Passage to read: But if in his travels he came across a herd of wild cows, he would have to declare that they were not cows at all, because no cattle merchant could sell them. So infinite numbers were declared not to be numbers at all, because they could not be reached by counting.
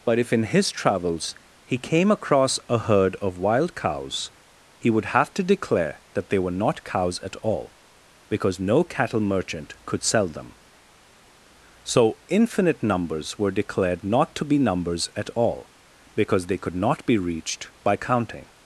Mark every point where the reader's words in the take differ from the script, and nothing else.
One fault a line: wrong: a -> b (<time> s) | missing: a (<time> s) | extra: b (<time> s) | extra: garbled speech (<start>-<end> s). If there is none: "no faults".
no faults